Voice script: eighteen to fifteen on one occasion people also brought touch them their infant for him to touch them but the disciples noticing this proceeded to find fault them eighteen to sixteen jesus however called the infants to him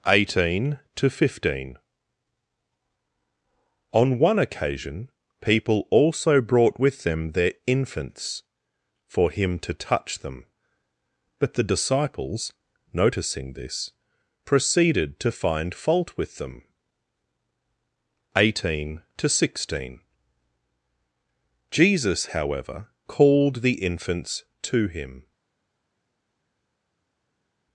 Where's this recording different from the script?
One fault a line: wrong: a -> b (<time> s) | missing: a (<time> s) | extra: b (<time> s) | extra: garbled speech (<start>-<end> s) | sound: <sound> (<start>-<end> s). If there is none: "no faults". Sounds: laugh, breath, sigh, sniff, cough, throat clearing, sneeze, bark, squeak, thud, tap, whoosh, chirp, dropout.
wrong: touch -> with (6.8 s)
wrong: infant -> infants (7.7 s)
extra: with (16.2 s)